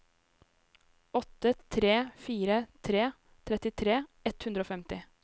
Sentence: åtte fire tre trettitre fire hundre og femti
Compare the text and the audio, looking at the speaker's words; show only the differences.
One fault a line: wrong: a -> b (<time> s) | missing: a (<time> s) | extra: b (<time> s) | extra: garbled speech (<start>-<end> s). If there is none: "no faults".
extra: tre (1.5 s)
wrong: fire -> ett (4.3 s)